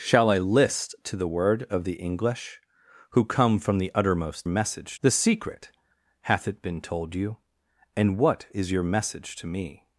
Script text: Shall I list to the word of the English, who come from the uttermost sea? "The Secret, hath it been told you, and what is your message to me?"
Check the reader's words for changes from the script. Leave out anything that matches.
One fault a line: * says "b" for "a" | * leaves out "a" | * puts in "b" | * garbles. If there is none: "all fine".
* says "message" for "sea"